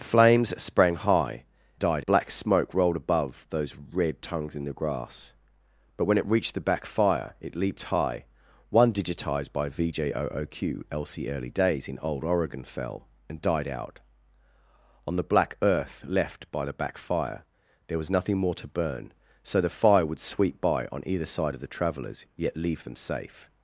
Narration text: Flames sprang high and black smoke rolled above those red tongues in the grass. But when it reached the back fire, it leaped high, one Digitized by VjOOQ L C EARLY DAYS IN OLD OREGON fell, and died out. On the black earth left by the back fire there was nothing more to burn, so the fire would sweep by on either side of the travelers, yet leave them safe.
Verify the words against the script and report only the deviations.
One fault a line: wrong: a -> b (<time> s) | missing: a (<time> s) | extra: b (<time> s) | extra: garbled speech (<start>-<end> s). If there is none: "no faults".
wrong: and -> died (1.8 s)